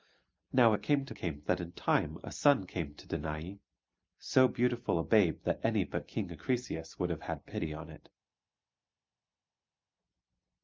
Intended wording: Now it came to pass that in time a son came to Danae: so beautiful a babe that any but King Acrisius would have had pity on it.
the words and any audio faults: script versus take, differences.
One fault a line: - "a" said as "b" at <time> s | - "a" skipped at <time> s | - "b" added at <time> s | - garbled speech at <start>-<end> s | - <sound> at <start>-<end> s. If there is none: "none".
- "pass" said as "came" at 1.1 s